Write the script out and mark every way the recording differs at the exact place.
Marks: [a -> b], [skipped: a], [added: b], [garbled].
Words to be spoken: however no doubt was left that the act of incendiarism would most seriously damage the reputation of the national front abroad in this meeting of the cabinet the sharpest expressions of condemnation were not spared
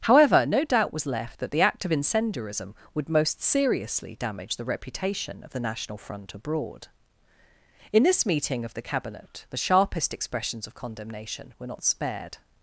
however no doubt was left that the act of incendiarism would most seriously damage the reputation of the national front abroad in this meeting of the cabinet the sharpest expressions of condemnation were not spared